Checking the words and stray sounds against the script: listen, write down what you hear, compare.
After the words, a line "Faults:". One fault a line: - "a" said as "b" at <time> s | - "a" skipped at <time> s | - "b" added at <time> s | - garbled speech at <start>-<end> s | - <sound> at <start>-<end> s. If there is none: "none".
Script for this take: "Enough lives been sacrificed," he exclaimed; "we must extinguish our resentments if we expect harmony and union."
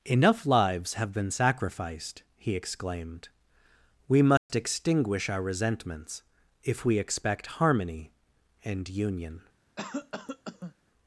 "Enough lives have been sacrificed," he exclaimed; "we must extinguish our resentments if we expect harmony and union."
Faults:
- "have" added at 0.9 s
- dropout at 4.4-4.5 s
- cough at 9.8-10.8 s